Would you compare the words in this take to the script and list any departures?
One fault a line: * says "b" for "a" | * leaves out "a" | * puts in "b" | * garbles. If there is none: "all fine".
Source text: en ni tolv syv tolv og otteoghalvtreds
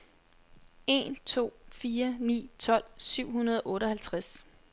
* puts in "to fire"
* says "hundrede" for "tolv"